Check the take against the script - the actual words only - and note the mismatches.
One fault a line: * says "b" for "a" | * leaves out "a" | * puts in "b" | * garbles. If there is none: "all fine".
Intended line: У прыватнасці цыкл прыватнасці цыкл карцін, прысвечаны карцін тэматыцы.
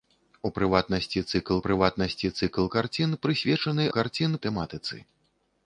all fine